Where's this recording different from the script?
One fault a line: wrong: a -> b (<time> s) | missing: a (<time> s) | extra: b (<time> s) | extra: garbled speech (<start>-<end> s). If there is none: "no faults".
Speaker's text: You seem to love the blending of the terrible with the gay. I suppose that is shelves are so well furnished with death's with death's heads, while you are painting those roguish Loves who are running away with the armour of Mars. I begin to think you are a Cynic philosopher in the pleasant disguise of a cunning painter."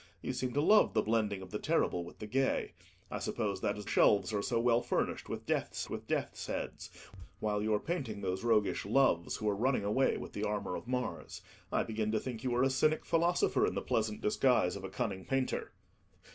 no faults